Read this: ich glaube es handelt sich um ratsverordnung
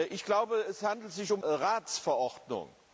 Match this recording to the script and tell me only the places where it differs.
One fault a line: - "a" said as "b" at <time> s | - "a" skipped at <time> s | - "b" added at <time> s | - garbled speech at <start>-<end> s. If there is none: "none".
none